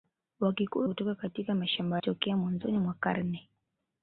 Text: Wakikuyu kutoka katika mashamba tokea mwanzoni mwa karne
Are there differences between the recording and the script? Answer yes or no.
no